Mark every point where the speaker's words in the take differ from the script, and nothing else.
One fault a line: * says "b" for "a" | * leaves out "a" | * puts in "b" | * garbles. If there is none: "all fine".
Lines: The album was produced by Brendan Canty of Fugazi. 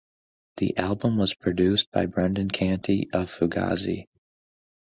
all fine